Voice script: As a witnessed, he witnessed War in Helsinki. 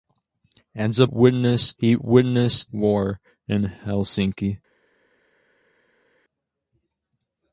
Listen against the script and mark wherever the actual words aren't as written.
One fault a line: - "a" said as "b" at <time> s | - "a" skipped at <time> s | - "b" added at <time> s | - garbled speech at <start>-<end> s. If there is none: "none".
none